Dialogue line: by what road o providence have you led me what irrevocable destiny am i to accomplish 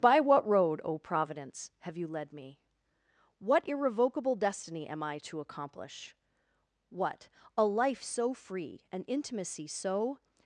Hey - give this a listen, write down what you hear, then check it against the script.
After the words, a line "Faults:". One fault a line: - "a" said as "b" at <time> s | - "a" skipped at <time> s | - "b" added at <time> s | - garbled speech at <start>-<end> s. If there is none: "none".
by what road o providence have you led me what irrevocable destiny am i to accomplish what a life so free an intimacy so
Faults:
- "what a life so free an intimacy so" added at 6.9 s